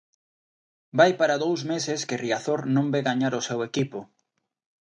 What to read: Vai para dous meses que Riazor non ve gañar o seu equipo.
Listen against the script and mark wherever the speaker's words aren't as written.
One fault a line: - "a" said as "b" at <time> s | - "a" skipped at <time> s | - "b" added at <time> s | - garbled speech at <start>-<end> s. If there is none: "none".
none